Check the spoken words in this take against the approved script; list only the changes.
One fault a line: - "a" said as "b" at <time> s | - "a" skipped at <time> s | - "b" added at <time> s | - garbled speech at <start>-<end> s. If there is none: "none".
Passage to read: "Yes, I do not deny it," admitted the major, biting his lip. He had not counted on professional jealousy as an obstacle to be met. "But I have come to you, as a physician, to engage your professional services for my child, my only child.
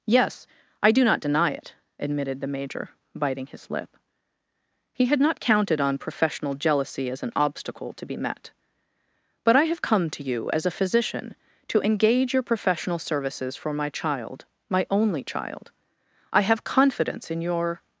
- "I have confidence in your" added at 16.3 s